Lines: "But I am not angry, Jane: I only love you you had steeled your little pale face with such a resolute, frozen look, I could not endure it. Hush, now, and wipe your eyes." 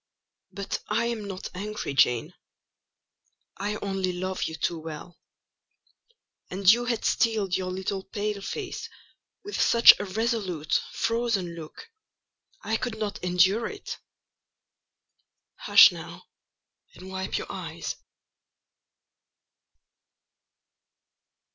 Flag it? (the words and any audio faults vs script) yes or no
yes